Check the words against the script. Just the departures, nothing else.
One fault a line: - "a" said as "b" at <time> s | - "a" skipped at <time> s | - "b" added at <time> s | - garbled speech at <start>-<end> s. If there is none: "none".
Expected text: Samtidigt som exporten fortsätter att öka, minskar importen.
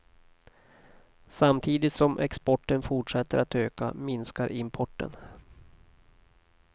none